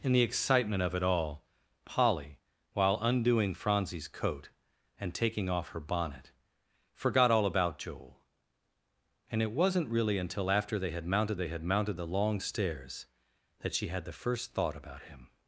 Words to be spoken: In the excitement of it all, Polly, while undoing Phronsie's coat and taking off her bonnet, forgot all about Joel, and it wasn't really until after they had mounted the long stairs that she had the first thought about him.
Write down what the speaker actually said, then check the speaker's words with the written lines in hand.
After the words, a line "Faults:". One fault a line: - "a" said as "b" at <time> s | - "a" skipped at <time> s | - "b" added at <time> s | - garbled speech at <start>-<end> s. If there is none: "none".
In the excitement of it all, Polly, while undoing Phronsie's coat and taking off her bonnet, forgot all about Joel, and it wasn't really until after they had mounted they had mounted the long stairs that she had the first thought about him.
Faults:
- "they had mounted" added at 11.4 s